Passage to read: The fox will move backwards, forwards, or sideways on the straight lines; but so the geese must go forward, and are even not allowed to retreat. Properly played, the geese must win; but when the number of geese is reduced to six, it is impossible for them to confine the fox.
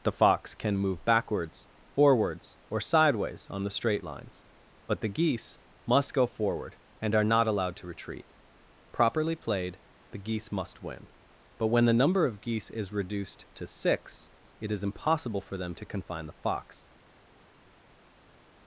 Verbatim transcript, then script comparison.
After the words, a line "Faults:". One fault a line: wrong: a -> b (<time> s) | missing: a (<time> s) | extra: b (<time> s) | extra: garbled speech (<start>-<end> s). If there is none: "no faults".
The fox can move backwards, forwards, or sideways on the straight lines; but the geese must go forward, and are not allowed to retreat. Properly played, the geese must win; but when the number of geese is reduced to six, it is impossible for them to confine the fox.
Faults:
wrong: will -> can (0.6 s)
missing: so (5.0 s)
missing: even (7.2 s)